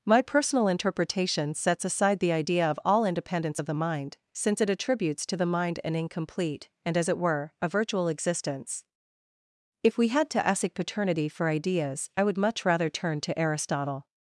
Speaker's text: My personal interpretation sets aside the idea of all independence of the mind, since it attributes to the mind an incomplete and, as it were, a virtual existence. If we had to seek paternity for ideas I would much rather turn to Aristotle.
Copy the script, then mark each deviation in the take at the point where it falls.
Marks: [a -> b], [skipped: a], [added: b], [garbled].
My personal interpretation sets aside the idea of all independence of the mind, since it attributes to the mind an incomplete and, as it were, a virtual existence. If we had to [seek -> ask] paternity for ideas I would much rather turn to Aristotle.